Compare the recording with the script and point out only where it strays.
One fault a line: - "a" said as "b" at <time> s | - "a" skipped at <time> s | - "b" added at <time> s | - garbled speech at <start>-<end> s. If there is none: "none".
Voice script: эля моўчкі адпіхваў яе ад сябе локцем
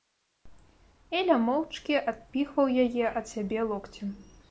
none